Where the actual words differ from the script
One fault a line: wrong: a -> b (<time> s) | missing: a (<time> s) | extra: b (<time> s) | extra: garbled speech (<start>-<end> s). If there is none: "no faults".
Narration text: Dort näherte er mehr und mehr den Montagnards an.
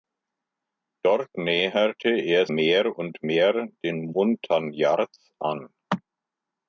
no faults